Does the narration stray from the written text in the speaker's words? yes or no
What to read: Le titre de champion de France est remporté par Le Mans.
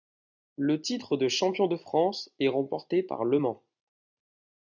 no